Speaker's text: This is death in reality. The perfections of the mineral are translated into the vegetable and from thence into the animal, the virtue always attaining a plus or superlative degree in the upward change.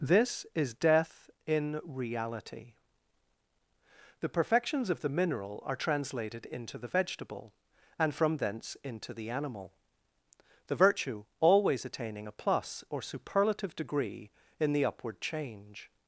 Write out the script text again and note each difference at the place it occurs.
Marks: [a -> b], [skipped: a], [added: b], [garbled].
This is death in reality. The perfections of the mineral are translated into the vegetable and from thence into the animal, the virtue always attaining a plus or superlative degree in the upward change.